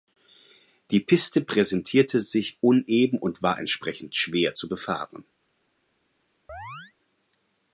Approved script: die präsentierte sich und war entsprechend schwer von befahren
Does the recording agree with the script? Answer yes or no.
no